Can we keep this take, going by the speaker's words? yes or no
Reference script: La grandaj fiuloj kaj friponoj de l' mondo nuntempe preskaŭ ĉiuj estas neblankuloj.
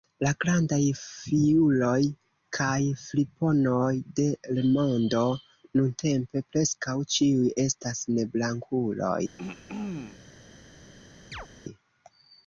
yes